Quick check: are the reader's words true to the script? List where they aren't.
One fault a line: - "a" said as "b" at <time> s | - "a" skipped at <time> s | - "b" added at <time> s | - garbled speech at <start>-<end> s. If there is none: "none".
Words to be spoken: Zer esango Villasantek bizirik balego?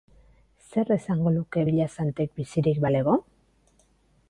- "luke" added at 1.4 s